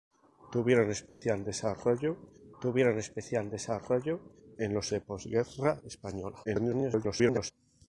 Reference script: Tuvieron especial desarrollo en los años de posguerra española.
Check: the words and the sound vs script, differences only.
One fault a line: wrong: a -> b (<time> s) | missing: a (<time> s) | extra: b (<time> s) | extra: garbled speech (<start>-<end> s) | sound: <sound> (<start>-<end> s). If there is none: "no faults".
sound: dropout (1.1-1.2 s)
extra: tuvieron especial desarrollo (2.6 s)
missing: años (4.9 s)
extra: garbled speech (6.4-7.5 s)